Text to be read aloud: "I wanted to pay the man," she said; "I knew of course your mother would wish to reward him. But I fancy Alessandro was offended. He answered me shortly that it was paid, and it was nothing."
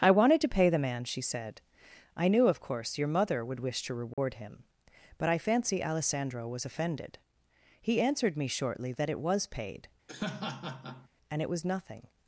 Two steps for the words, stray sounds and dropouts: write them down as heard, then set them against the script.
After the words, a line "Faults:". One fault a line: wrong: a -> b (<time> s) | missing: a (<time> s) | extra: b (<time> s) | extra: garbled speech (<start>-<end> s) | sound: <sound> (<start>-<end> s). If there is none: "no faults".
"I wanted to pay the man," she said; "I knew of course your mother would wish to reward him. But I fancy Alessandro was offended. He answered me shortly that it was paid, and it was nothing."
Faults:
sound: dropout (4.1-4.2 s)
sound: laugh (10.1-11.1 s)